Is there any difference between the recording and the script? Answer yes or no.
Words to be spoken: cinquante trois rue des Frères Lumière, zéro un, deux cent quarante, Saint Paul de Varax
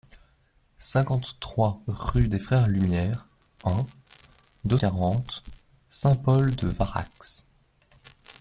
yes